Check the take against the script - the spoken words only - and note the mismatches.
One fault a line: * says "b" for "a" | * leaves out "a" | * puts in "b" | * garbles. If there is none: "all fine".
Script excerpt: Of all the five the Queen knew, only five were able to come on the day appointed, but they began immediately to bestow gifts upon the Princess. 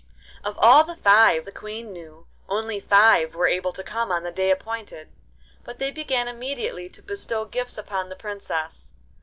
all fine